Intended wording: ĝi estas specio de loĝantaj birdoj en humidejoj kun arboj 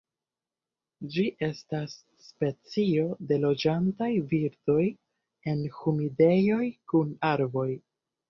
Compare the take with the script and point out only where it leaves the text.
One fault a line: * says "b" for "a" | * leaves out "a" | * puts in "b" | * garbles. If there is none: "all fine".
all fine